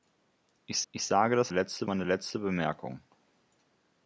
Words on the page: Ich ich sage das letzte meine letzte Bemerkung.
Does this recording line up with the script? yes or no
yes